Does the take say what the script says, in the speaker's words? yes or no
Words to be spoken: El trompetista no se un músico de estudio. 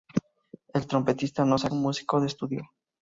yes